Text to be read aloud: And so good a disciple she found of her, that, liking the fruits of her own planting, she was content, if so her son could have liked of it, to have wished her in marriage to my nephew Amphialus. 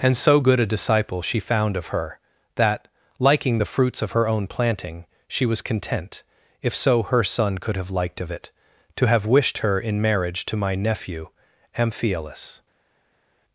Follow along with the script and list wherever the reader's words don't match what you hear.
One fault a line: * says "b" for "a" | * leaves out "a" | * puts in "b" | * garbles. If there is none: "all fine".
all fine